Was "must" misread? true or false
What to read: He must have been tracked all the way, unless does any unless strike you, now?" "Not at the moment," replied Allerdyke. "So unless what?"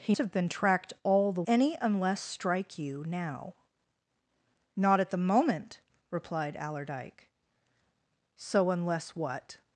true